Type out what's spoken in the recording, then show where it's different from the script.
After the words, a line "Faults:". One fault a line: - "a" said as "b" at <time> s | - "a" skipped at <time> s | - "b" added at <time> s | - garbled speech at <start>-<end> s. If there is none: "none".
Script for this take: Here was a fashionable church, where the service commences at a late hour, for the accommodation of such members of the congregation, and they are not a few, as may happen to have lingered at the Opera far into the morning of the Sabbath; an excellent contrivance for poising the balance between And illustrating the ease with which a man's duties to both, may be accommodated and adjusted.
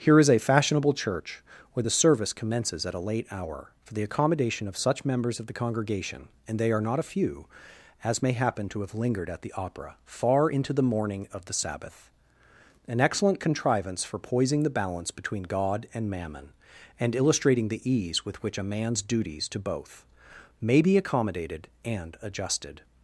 Here is a fashionable church, where the service commences at a late hour, for the accommodation of such members of the congregation, and they are not a few, as may happen to have lingered at the Opera far into the morning of the Sabbath; an excellent contrivance for poising the balance between God and Mammon, and illustrating the ease with which a man's duties to both, may be accommodated and adjusted.
Faults:
- "was" said as "is" at 0.2 s
- "God and Mammon" added at 15.4 s